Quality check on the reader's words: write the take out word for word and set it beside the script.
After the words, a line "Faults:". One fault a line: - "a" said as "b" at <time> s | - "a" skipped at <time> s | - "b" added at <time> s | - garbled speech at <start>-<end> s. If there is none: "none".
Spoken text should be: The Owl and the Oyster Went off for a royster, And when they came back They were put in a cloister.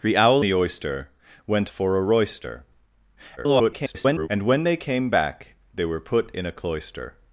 The Owl the Oyster Went for a royster, [garbled] And when they came back They were put in a cloister.
Faults:
- "and" skipped at 0.5 s
- "off" skipped at 1.7 s
- garbled speech at 3.4-4.3 s